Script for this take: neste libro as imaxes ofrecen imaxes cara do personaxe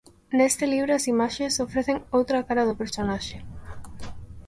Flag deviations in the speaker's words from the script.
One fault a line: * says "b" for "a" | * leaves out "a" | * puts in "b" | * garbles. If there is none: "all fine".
* says "outra" for "imaxes"